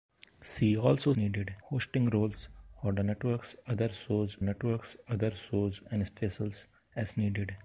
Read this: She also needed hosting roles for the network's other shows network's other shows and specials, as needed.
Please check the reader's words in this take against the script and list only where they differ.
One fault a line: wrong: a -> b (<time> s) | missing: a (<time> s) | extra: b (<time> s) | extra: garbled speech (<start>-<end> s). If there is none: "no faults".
no faults